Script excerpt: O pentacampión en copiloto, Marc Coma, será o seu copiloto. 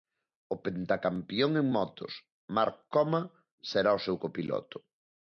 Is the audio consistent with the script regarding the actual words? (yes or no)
no